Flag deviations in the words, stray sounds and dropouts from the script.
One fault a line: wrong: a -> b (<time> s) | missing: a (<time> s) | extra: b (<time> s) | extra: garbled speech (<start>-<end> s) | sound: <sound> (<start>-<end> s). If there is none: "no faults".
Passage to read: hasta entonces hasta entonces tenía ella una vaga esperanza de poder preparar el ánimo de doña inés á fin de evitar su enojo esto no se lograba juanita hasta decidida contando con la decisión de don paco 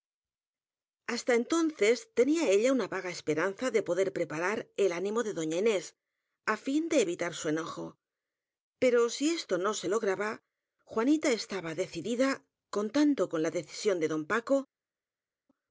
missing: hasta entonces (2.1 s)
extra: pero si (8.8 s)
wrong: hasta -> estaba (11.3 s)